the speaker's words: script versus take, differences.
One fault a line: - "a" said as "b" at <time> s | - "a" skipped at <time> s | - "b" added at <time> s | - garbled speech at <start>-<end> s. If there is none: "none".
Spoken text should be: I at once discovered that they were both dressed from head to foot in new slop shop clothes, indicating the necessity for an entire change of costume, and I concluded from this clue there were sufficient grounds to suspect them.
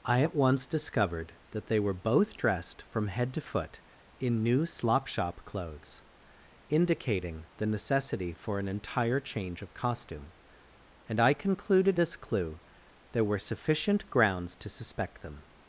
- "from" skipped at 12.0 s